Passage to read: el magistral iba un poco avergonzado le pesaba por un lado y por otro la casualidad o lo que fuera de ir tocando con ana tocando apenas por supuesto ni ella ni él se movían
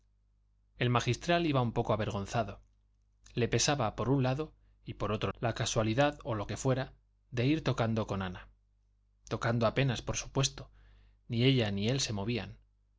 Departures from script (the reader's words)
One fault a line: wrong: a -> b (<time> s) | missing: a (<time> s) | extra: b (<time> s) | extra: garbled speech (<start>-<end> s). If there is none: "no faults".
no faults